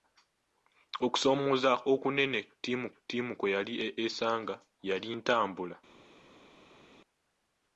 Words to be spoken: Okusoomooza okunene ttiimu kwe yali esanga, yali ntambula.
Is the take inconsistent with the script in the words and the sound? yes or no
yes